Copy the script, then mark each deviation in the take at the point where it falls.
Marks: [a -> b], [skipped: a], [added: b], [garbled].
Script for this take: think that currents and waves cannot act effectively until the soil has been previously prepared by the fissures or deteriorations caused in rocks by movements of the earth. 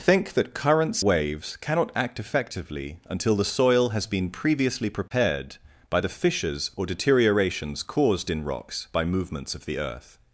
think that currents [skipped: and] waves cannot act effectively until the soil has been previously prepared by the fissures or deteriorations caused in rocks by movements of the earth.